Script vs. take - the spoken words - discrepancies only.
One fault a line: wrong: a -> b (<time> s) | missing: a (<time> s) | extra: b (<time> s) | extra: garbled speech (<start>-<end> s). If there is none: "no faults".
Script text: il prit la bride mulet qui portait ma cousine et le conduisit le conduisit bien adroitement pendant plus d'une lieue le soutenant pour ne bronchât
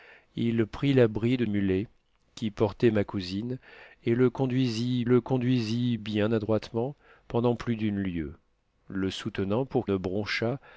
no faults